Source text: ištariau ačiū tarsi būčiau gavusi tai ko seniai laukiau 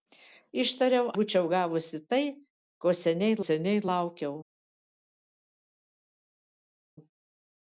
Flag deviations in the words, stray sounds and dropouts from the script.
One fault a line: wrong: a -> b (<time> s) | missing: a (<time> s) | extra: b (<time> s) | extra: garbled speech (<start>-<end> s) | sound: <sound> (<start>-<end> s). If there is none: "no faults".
missing: ačiū tarsi (1.1 s)
extra: seniai (3.4 s)